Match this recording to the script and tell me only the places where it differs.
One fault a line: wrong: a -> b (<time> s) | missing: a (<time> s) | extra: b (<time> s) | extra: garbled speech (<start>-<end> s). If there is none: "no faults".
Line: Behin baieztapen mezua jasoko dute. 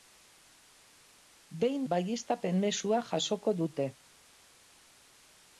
no faults